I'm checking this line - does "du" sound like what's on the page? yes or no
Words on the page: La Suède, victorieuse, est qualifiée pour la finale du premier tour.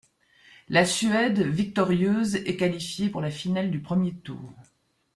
yes